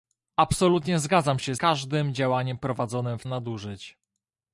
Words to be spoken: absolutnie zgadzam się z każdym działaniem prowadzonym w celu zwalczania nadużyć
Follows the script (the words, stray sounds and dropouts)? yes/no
no